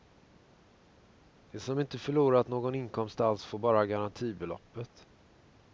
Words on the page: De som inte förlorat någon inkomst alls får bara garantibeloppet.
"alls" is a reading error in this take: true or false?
false